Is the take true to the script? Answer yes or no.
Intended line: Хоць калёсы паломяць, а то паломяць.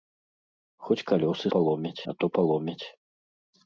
yes